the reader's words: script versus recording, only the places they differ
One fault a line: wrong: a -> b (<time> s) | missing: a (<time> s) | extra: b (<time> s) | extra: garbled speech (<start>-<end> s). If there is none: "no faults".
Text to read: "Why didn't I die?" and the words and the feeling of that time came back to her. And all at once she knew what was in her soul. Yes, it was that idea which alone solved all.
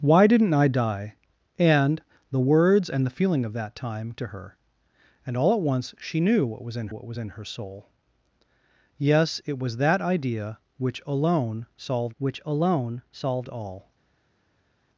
missing: came back (4.1 s)
extra: what was in (6.9 s)
extra: which alone solved (12.2 s)